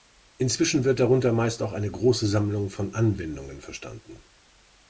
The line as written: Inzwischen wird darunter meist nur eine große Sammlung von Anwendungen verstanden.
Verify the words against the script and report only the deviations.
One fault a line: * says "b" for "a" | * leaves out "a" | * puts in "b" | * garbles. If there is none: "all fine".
* says "auch" for "nur"